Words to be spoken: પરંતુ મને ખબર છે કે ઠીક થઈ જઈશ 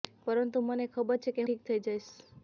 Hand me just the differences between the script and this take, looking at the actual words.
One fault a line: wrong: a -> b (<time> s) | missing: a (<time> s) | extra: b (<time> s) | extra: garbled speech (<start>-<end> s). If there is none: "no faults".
no faults